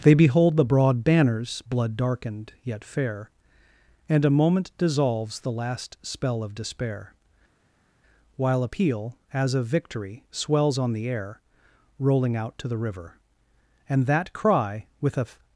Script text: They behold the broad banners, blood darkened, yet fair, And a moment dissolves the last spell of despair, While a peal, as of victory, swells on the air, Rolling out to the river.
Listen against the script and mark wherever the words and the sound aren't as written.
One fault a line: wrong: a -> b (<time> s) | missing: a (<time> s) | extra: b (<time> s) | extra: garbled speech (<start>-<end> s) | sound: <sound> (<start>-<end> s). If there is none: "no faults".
extra: And that cry with a (13.9 s)